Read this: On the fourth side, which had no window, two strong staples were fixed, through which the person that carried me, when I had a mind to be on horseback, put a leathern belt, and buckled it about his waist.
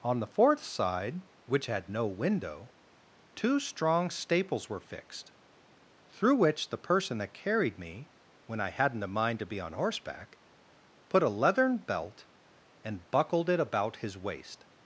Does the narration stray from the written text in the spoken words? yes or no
yes